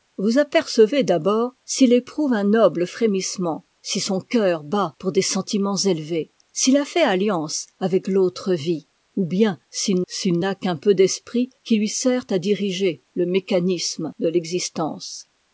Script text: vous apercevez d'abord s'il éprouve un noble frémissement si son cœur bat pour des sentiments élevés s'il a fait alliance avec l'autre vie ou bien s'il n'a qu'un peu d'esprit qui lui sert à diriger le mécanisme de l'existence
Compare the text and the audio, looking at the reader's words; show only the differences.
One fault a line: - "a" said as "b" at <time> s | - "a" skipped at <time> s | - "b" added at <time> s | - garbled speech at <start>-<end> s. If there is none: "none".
- "s'il" added at 10.0 s